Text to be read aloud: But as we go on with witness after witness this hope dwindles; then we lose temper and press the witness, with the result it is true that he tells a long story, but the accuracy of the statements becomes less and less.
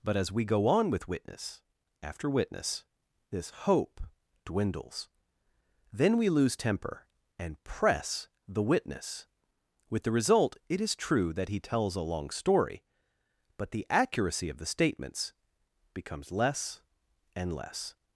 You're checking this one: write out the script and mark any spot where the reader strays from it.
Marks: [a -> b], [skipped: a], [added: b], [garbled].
But as we go on with witness after witness this hope dwindles; then we lose temper and press the witness, with the result it is true that he tells a long story, but the accuracy of the statements becomes less and less.